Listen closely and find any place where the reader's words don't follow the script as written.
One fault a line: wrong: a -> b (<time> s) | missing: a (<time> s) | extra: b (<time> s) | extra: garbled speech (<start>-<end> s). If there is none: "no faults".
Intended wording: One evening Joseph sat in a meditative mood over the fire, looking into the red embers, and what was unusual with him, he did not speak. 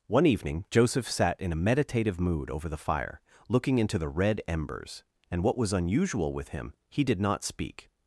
no faults